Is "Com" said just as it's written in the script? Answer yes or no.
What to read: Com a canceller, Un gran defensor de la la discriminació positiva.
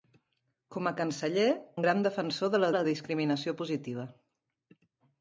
yes